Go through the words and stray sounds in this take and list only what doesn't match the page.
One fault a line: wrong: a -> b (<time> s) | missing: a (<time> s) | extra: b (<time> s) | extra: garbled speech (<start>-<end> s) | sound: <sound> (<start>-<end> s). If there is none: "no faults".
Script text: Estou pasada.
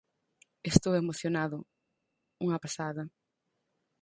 extra: emocionado unha (1.0 s)